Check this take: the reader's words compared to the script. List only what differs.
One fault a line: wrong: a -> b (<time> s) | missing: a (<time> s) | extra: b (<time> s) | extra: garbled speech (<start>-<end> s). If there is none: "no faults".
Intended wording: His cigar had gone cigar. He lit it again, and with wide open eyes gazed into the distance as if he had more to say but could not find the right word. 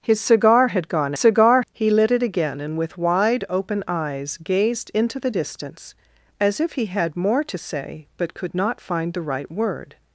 no faults